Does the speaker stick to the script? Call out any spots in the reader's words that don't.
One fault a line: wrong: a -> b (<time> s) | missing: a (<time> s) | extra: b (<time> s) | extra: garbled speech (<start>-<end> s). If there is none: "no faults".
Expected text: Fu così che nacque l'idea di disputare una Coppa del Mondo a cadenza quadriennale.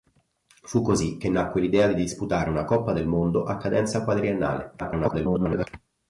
extra: garbled speech (4.8-5.7 s)